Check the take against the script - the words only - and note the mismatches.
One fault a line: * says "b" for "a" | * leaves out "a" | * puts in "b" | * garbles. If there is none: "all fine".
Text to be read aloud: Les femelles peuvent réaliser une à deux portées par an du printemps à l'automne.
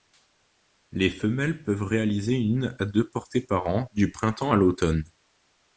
all fine